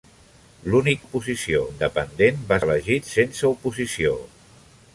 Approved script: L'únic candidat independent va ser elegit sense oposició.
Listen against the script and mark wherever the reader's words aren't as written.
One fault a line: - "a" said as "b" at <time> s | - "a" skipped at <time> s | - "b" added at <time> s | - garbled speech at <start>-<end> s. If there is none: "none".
- "candidat" said as "oposició" at 1.0 s
- "ser" skipped at 2.6 s